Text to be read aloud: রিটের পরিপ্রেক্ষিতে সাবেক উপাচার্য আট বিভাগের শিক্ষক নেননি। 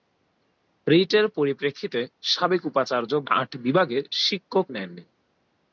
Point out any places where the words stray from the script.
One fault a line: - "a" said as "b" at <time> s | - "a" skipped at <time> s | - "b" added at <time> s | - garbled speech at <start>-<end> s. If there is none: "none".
none